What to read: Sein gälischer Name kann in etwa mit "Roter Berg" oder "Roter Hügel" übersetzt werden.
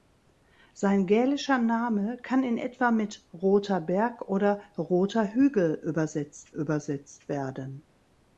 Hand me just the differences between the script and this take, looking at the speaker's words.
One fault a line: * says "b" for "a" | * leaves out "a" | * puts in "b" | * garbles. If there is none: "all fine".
* puts in "übersetzt"